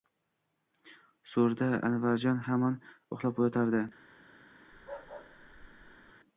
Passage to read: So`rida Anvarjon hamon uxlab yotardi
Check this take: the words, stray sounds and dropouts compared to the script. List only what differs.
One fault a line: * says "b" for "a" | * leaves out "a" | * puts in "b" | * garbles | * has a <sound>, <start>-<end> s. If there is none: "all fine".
* has a bark, 4.7-6.1 s